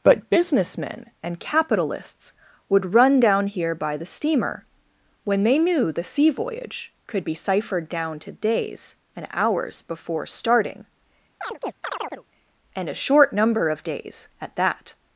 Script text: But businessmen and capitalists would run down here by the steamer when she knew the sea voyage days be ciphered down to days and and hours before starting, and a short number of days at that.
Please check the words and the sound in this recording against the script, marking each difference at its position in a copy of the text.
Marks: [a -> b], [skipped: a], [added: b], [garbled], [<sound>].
But businessmen and capitalists would run down here by the steamer when [she -> they] knew the sea voyage [days -> could] be ciphered down to days and [skipped: and] hours before starting, [chirp] and a short number of days at that.